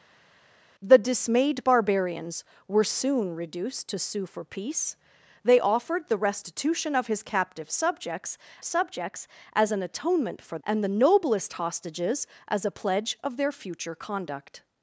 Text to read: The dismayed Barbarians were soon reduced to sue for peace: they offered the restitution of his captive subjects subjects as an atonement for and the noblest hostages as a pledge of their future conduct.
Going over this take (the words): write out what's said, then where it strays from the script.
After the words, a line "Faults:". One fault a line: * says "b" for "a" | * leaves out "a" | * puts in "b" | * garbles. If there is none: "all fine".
The dismayed Barbarians were soon reduced to sue for peace: they offered the restitution of his captive subjects subjects as an atonement for and the noblest hostages as a pledge of their future conduct.
Faults:
all fine